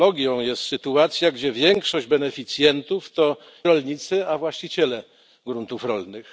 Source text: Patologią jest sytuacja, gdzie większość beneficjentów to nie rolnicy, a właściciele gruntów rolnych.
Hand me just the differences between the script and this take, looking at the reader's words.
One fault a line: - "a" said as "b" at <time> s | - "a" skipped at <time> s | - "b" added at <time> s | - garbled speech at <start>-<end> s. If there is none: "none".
- "nie" skipped at 3.4 s